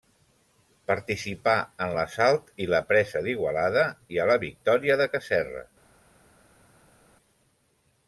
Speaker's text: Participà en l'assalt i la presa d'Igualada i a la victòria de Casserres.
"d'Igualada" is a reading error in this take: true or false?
false